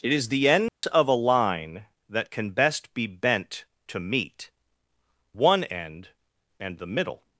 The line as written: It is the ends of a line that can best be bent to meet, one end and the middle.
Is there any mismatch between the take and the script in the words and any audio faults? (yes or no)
yes